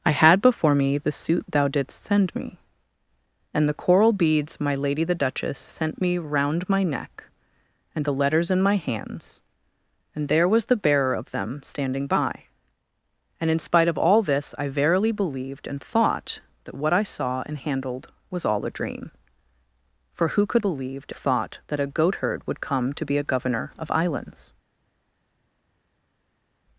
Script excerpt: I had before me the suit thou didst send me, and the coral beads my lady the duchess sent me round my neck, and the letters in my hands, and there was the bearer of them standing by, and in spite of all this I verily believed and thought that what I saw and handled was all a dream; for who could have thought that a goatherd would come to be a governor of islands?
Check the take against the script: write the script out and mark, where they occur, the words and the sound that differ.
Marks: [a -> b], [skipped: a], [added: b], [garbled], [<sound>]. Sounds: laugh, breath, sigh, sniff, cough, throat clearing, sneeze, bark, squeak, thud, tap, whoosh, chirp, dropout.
I had before me the suit thou didst send me, and the coral beads my lady the duchess sent me round my neck, and the letters in my hands, and there was the bearer of them standing by, and in spite of all this I verily believed and thought that what I saw and handled was all a dream; for who could [have -> believed] thought that a goatherd would come to be a governor of islands?